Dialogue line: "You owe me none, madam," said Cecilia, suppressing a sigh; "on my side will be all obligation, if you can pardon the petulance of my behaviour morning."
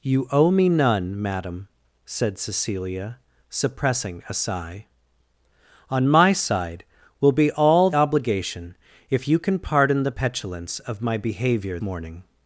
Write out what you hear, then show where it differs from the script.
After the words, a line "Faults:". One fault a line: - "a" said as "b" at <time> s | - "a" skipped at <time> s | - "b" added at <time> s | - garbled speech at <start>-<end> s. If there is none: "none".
"You owe me none, madam," said Cecilia, suppressing a sigh; "on my side will be all obligation, if you can pardon the petulance of my behaviour morning."
Faults:
none